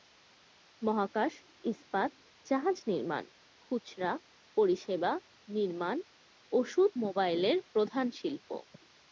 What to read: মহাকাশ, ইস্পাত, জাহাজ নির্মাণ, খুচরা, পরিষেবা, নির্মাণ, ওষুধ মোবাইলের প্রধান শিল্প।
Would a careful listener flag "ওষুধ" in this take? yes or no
no